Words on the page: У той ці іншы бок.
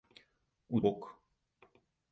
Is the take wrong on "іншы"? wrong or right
wrong